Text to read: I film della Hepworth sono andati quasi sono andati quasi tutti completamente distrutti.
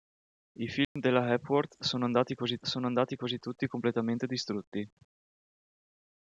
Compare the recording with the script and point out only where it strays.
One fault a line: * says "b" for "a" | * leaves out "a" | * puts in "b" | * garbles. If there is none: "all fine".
all fine